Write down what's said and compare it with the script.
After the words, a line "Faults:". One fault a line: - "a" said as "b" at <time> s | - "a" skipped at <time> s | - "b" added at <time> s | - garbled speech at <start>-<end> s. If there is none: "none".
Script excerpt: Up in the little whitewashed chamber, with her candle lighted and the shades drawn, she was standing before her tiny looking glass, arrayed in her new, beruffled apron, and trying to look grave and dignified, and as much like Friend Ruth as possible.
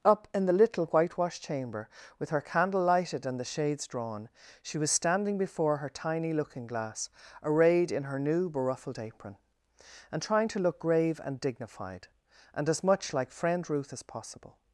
Up in the little whitewashed chamber, with her candle lighted and the shades drawn, she was standing before her tiny looking glass, arrayed in her new, beruffled apron, and trying to look grave and dignified, and as much like Friend Ruth as possible.
Faults:
none